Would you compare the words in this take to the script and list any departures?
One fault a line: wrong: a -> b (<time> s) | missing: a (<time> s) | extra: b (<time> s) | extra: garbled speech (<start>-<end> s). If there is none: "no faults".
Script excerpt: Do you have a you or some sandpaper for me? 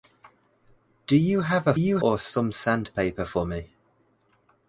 no faults